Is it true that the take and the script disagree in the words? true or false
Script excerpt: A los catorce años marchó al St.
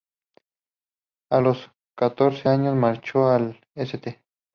false